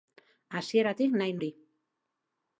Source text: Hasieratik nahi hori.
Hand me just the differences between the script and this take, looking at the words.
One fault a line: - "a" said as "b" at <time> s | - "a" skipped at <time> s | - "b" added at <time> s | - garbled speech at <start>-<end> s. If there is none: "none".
none